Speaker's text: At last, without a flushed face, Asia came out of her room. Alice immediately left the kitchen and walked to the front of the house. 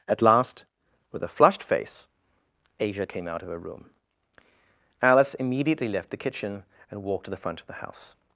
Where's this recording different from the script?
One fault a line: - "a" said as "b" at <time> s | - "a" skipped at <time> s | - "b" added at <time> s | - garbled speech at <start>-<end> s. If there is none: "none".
- "without" said as "with" at 1.1 s